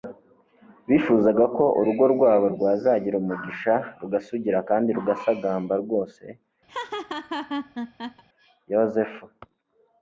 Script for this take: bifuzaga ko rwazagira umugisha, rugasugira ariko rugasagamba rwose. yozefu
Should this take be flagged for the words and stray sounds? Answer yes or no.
yes